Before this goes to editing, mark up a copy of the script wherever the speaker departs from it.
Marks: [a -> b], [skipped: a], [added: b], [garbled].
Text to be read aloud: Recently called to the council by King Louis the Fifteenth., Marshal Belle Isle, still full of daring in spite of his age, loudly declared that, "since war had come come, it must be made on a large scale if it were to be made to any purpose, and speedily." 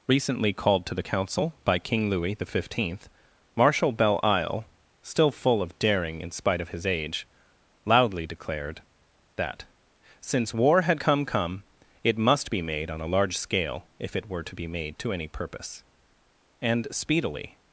Recently called to the council by King Louis the Fifteenth., Marshal Belle Isle, still full of daring in spite of his age, loudly declared that, "since war had come come, it must be made on a large scale if it were to be made to any purpose, and speedily."